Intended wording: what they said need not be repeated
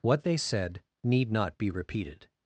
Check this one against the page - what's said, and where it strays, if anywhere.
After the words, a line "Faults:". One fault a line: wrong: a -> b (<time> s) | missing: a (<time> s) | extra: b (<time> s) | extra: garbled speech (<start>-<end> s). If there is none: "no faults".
what they said need not be repeated
Faults:
no faults